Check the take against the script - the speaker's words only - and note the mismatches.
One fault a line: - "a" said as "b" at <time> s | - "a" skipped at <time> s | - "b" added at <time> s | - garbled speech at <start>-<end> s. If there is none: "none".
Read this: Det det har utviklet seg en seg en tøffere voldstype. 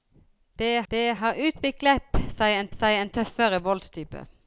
none